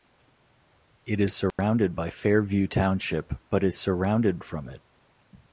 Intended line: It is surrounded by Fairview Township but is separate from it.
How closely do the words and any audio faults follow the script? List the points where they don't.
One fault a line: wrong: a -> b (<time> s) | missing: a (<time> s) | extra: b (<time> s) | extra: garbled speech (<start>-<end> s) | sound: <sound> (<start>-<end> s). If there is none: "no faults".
sound: dropout (1.5-1.6 s)
wrong: separate -> surrounded (3.7 s)